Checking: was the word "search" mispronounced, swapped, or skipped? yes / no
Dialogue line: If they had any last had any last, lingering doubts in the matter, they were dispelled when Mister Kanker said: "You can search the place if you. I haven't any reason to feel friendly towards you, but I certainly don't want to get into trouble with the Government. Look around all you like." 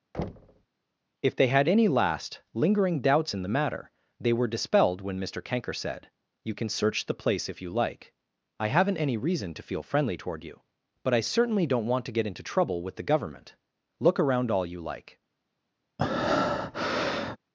no